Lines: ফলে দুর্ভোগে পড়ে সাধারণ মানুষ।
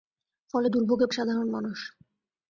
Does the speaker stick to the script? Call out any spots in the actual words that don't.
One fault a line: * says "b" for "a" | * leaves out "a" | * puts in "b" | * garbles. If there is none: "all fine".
* leaves out "পড়ে"